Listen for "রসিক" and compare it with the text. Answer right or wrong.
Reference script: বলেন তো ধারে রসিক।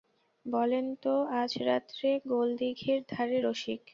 right